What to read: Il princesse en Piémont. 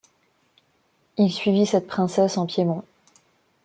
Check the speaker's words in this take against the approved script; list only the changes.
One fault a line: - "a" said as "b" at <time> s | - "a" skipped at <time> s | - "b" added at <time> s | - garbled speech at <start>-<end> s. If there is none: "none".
- "suivit cette" added at 1.3 s